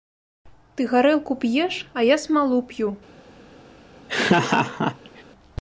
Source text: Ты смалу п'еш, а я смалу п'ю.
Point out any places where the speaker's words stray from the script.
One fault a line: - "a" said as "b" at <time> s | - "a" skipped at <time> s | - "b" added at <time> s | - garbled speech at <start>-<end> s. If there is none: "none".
- "смалу" said as "гарэлку" at 0.9 s